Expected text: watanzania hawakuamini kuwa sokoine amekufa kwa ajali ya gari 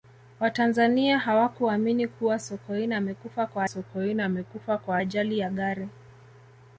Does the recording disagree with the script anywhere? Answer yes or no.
yes